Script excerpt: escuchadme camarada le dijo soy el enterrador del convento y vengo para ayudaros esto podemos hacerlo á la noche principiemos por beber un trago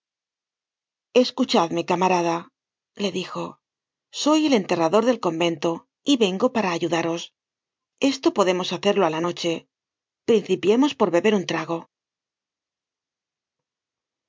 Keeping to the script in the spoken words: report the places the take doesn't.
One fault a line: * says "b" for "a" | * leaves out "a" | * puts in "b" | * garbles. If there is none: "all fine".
all fine